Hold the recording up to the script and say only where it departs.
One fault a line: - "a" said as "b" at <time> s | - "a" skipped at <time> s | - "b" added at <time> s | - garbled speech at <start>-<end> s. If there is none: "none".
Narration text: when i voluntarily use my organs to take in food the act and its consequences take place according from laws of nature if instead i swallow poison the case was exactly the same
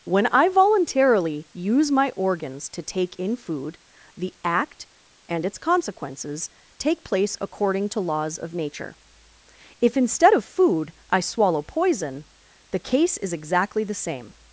- "from" said as "to" at 7.9 s
- "of food" added at 10.3 s
- "was" said as "is" at 13.2 s